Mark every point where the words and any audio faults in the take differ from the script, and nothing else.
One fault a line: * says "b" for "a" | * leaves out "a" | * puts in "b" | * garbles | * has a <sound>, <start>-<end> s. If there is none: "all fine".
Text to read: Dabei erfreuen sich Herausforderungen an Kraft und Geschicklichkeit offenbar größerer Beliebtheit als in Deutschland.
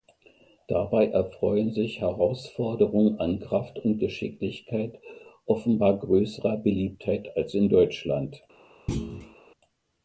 * has a thud, 8.9-9.4 s